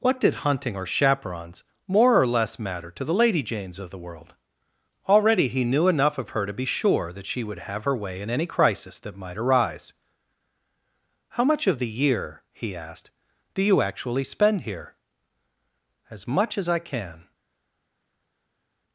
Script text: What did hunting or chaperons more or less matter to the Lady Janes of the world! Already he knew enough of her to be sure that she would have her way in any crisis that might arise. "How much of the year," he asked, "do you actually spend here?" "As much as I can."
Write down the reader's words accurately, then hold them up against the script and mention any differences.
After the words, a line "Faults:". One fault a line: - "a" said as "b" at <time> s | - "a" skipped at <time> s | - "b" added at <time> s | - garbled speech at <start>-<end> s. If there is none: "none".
What did hunting or chaperons more or less matter to the Lady Janes of the world! Already he knew enough of her to be sure that she would have her way in any crisis that might arise. "How much of the year," he asked, "do you actually spend here?" "As much as I can."
Faults:
none